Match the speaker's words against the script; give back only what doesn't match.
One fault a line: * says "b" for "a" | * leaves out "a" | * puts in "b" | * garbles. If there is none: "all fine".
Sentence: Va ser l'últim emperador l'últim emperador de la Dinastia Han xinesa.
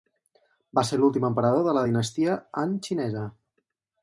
* leaves out "l'últim emperador"